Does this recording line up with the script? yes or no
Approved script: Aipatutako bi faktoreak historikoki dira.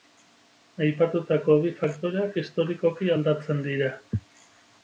no